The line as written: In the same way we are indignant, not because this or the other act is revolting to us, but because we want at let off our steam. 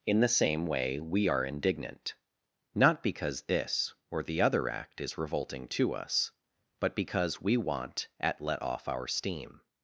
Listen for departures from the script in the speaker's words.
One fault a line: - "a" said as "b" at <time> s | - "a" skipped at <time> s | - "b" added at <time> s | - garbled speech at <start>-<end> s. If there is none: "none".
none